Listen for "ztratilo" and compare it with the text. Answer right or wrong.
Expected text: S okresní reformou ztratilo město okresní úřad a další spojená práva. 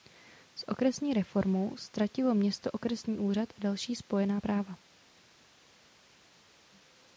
right